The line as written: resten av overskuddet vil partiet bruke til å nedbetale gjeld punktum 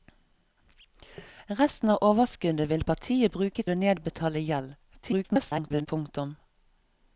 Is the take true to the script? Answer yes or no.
no